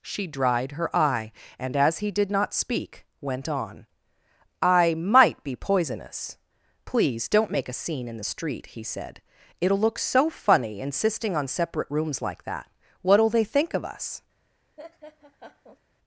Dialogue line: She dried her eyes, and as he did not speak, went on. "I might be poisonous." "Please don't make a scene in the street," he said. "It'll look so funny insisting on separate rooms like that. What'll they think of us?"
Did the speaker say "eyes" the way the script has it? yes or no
no